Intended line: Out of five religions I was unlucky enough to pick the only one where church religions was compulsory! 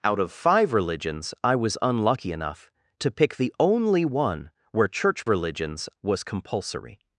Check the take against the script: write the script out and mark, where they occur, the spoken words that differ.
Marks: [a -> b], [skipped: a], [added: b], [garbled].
Out of five religions I was unlucky enough to pick the only one where church religions was compulsory!